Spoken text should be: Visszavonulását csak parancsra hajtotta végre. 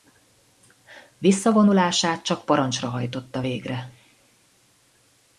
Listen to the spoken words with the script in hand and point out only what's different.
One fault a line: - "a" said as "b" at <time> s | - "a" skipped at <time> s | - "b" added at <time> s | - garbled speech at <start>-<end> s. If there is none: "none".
none